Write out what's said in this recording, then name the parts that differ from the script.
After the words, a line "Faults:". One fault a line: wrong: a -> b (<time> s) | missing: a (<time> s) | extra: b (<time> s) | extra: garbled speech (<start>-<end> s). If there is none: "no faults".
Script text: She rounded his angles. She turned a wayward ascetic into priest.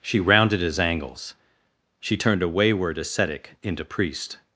She rounded his angles. She turned a wayward ascetic into priest.
Faults:
no faults